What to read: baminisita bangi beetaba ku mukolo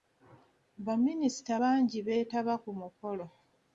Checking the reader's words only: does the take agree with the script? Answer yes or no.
yes